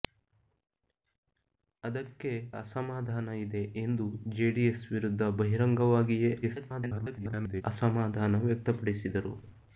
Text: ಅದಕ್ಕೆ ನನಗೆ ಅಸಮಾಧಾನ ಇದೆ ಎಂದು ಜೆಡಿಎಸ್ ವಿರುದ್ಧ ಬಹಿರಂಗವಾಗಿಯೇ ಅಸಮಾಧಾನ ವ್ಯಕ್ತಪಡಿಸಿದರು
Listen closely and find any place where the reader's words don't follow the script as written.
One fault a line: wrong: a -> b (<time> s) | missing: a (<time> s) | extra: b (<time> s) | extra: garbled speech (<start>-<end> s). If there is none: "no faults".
missing: ನನಗೆ (2.3 s)
extra: garbled speech (6.4-7.6 s)